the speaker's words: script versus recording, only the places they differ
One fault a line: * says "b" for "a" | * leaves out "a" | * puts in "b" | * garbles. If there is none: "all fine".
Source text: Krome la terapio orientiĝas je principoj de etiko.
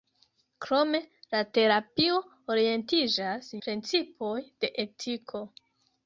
* leaves out "je"